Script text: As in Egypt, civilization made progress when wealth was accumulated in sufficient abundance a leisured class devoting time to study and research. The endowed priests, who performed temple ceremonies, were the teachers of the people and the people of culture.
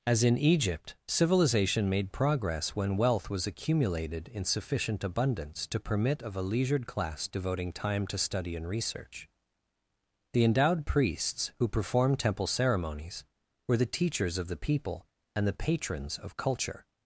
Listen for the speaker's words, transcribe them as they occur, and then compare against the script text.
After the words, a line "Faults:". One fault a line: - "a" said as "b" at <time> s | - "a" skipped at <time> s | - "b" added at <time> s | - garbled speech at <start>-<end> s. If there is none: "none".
As in Egypt, civilization made progress when wealth was accumulated in sufficient abundance to permit of a leisured class devoting time to study and research. The endowed priests, who performed temple ceremonies, were the teachers of the people and the patrons of culture.
Faults:
- "to permit of" added at 5.7 s
- "people" said as "patrons" at 15.5 s